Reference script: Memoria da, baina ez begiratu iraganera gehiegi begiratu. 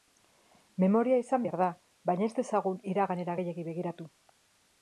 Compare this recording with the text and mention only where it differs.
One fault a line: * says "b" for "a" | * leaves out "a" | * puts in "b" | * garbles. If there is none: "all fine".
* puts in "izan behar"
* says "dezagun" for "begiratu"